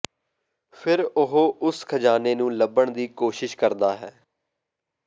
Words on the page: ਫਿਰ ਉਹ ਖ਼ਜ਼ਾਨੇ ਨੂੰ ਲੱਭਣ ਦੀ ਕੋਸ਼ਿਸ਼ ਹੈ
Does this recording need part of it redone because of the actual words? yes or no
yes